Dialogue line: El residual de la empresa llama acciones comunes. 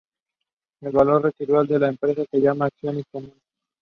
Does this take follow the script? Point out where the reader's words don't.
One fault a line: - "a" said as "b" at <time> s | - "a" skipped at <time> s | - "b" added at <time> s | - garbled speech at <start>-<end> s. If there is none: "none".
- "valor" added at 0.9 s
- "se" added at 2.3 s